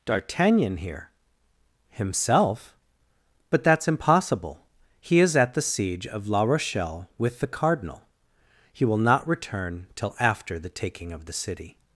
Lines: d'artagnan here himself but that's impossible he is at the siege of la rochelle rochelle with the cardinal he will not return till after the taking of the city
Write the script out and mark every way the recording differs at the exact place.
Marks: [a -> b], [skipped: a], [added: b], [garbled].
d'artagnan here himself but that's impossible he is at the siege of la rochelle [skipped: rochelle] with the cardinal he will not return till after the taking of the city